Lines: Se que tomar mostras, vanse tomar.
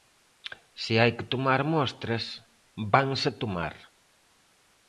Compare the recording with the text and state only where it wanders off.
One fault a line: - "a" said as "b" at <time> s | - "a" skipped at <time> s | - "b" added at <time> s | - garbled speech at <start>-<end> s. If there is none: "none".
- "hai" added at 1.0 s